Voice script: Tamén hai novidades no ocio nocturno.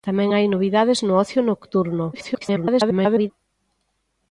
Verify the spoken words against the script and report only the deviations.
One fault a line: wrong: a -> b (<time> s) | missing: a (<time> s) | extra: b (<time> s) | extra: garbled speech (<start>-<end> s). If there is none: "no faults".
extra: garbled speech (2.1-3.3 s)